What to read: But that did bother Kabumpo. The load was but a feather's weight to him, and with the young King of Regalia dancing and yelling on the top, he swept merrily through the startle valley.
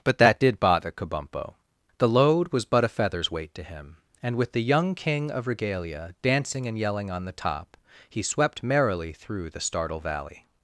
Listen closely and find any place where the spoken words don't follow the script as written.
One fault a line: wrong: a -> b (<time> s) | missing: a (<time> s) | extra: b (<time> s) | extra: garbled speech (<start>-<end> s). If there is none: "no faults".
no faults